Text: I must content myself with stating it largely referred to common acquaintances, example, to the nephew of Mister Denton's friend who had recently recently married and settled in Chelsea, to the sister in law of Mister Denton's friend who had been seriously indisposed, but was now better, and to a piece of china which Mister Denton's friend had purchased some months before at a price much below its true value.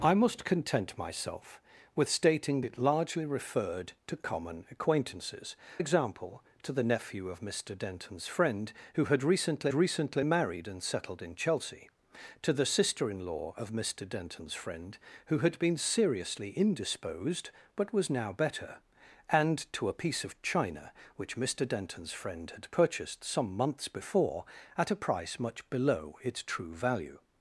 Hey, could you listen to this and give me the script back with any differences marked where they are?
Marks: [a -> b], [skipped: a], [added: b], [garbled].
I must content myself with stating it largely referred to common acquaintances, example, to the nephew of Mister Denton's friend who had recently recently married and settled in Chelsea, to the sister in law of Mister Denton's friend who had been seriously indisposed, but was now better, and to a piece of china which Mister Denton's friend had purchased some months before at a price much below its true value.